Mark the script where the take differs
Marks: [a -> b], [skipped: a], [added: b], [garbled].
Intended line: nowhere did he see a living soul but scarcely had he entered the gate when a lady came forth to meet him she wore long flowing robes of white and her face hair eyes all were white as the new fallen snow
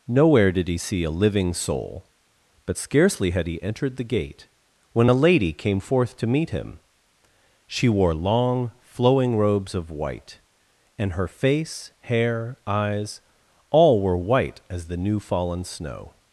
nowhere did he see a living soul but scarcely had he entered the gate when a lady came forth to meet him she wore long flowing robes of white and her face hair eyes all were white as the new fallen snow